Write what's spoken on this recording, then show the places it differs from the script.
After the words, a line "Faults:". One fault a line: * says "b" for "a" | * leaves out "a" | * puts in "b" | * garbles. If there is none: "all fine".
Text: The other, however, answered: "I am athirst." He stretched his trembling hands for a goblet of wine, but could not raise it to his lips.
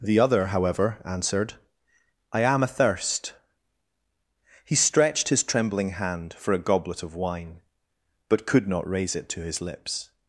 The other, however, answered: "I am athirst." He stretched his trembling hand for a goblet of wine, but could not raise it to his lips.
Faults:
* says "hand" for "hands"